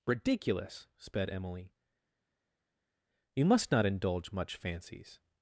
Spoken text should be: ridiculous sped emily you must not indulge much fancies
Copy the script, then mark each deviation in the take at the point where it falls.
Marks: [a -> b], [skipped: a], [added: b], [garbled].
ridiculous sped emily you must not indulge much fancies